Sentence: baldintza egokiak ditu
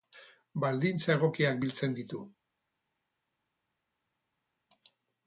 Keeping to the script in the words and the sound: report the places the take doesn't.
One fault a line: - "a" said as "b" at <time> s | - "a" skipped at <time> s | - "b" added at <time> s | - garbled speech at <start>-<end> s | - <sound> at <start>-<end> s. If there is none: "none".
- "biltzen" added at 1.6 s